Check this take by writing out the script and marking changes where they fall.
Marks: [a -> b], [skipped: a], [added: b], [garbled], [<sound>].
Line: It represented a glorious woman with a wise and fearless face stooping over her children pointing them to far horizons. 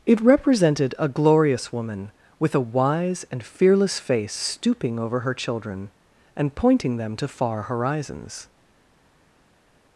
It represented a glorious woman with a wise and fearless face stooping over her children [added: and] pointing them to far horizons.